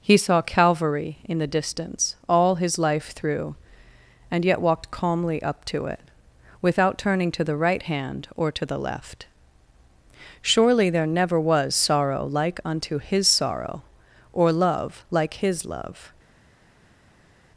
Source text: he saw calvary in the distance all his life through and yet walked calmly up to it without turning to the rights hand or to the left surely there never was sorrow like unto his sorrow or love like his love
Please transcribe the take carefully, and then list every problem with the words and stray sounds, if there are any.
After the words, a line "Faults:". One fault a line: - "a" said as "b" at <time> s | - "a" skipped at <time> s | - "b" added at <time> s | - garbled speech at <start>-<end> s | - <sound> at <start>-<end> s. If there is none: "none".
he saw calvary in the distance all his life through and yet walked calmly up to it without turning to the right hand or to the left surely there never was sorrow like unto his sorrow or love like his love
Faults:
- "rights" said as "right" at 7.5 s